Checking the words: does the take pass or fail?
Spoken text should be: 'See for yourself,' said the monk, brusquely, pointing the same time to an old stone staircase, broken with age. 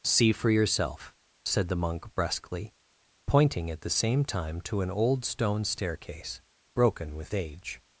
fail